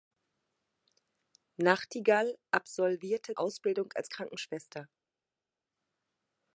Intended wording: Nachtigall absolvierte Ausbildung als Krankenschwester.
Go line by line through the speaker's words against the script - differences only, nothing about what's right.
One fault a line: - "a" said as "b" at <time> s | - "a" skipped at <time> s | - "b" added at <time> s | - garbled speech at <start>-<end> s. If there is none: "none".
none